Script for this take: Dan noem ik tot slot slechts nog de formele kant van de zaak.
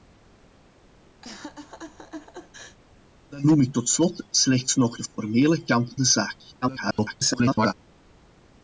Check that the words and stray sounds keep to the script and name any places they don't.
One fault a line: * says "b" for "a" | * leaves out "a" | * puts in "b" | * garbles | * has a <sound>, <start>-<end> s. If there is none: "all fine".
* has a laugh, 1.2-2.8 s
* leaves out "van"
* garbles